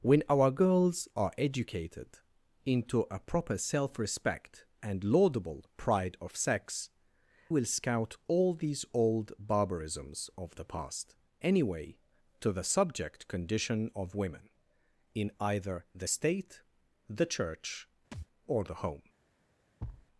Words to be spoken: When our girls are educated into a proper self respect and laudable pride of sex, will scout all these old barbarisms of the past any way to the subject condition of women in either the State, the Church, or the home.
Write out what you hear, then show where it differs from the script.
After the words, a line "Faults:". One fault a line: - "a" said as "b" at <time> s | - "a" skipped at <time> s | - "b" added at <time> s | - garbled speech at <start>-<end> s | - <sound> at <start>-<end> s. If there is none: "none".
When our girls are educated into a proper self respect and laudable pride of sex, will scout all these old barbarisms of the past any way to the subject condition of women in either the State, the Church, or the home.
Faults:
- thud at 18.1-18.3 s
- thud at 19.8-20.1 s